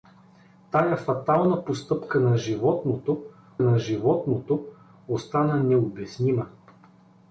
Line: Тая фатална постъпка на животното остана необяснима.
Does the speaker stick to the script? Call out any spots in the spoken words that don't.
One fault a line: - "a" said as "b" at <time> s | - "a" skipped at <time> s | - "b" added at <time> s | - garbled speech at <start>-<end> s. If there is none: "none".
- "на животното" added at 3.6 s